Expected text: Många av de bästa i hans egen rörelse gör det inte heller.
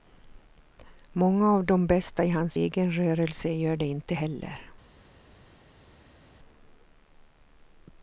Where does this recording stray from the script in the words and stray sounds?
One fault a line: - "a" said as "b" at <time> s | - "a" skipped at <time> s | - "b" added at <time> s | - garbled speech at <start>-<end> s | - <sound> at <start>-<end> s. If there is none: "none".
none